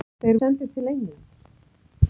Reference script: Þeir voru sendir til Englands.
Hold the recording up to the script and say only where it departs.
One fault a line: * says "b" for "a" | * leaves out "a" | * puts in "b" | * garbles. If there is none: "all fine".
* leaves out "voru"